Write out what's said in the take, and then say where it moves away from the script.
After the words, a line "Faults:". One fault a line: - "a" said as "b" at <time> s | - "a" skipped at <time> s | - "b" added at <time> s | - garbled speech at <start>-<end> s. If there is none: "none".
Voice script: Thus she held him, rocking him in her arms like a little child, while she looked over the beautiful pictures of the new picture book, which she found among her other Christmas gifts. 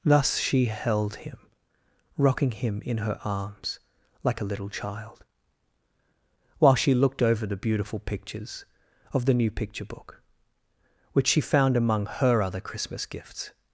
Thus she held him, rocking him in her arms like a little child, while she looked over the beautiful pictures of the new picture book, which she found among her other Christmas gifts.
Faults:
none